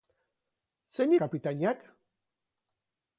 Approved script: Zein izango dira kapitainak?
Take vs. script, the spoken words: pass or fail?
fail